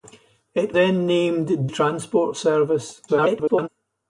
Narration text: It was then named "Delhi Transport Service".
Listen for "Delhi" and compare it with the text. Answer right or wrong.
wrong